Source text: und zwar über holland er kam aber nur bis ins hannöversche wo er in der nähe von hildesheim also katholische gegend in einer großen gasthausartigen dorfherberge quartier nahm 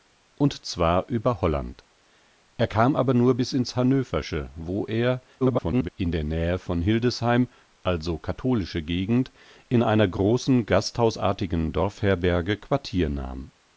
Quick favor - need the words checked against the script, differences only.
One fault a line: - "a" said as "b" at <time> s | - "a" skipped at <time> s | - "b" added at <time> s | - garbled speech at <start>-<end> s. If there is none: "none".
- garbled speech at 5.4-5.9 s